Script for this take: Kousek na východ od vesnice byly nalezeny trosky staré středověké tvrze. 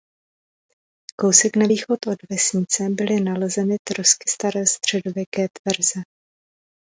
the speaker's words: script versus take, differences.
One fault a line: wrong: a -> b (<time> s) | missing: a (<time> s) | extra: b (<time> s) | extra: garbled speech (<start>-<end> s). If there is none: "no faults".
no faults